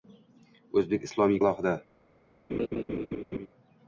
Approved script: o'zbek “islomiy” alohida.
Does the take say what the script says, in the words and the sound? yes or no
no